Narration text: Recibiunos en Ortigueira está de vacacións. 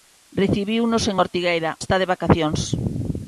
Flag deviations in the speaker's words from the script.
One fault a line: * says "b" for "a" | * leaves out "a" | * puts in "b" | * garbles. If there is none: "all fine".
all fine